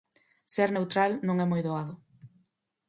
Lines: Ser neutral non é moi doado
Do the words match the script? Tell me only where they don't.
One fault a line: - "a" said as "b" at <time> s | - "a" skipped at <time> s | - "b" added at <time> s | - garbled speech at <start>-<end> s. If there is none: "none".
none